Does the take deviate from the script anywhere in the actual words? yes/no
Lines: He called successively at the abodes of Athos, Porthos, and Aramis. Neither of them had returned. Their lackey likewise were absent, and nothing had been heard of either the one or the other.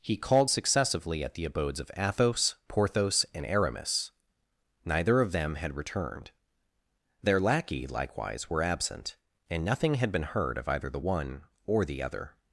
no